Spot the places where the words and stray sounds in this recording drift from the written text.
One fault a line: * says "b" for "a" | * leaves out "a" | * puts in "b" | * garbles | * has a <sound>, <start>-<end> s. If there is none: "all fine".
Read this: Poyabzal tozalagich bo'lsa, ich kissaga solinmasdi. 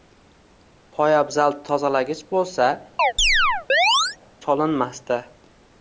* leaves out "ich kissaga"
* has a chirp, 3.0-4.2 s